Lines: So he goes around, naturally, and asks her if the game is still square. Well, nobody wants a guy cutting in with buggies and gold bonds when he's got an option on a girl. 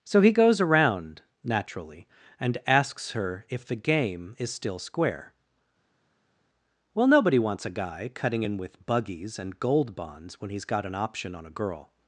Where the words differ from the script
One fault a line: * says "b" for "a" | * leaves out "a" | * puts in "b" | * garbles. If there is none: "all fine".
all fine